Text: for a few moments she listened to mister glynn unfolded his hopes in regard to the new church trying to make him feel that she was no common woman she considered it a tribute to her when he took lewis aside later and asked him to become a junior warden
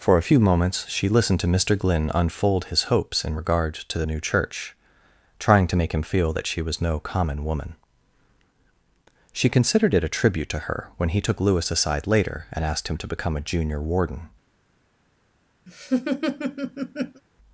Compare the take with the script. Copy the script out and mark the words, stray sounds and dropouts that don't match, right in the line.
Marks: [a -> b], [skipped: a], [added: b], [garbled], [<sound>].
for a few moments she listened to mister glynn [unfolded -> unfold] his hopes in regard to the new church trying to make him feel that she was no common woman she considered it a tribute to her when he took lewis aside later and asked him to become a junior warden [laugh]